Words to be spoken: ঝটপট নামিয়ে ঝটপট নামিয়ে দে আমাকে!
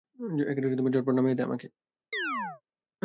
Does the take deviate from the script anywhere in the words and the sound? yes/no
yes